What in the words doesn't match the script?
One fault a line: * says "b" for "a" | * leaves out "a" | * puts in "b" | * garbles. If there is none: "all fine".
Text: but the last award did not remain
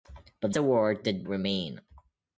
* leaves out "the last"
* leaves out "not"